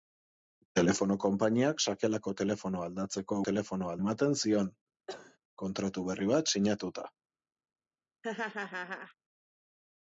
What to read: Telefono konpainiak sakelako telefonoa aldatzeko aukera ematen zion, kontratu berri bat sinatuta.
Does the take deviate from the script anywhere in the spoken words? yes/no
yes